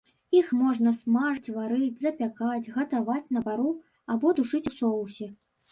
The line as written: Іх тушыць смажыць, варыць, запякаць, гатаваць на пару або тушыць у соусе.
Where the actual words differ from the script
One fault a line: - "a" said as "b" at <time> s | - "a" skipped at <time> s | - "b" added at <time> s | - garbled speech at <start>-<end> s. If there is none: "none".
- "тушыць" said as "можна" at 0.6 s